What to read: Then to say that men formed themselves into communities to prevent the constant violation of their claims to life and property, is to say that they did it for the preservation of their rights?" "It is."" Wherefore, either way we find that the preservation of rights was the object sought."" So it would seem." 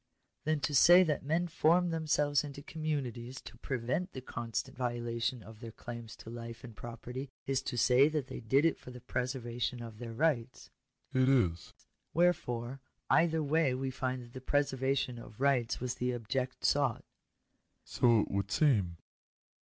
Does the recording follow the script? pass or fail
pass